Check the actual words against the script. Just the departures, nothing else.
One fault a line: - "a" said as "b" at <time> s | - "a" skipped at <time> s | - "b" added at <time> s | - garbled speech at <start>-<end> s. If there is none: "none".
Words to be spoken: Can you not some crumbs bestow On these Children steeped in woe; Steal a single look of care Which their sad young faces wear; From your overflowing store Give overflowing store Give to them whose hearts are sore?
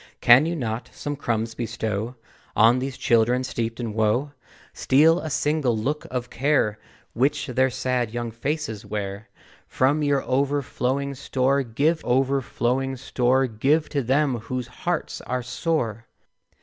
none